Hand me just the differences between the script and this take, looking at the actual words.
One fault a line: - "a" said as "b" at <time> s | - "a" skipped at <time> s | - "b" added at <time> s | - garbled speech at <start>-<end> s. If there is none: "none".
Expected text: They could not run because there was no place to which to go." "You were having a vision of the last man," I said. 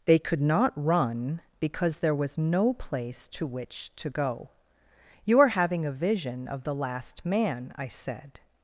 - "were" said as "are" at 5.4 s